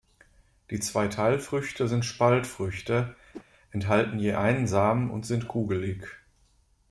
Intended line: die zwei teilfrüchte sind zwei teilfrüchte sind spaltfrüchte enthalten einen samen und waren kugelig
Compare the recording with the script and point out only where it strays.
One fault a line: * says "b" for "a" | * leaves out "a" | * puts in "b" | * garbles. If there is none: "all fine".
* leaves out "zwei teilfrüchte sind"
* puts in "je"
* says "sind" for "waren"